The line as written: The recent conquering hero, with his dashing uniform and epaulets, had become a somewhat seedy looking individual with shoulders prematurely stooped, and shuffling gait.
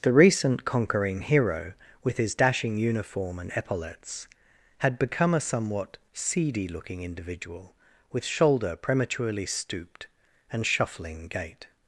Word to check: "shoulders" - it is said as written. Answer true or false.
false